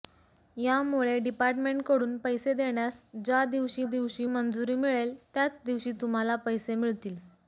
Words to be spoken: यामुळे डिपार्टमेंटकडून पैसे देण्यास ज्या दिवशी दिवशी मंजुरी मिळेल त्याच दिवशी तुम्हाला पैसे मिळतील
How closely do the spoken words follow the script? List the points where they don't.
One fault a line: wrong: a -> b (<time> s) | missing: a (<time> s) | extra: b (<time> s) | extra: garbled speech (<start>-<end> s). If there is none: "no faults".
no faults